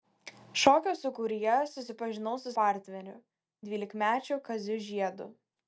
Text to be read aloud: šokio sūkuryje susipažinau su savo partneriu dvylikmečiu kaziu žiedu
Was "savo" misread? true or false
true